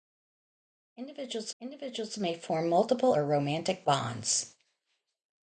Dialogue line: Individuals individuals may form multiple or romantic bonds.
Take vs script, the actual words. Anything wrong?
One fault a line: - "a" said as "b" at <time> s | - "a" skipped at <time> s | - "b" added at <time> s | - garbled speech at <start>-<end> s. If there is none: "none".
none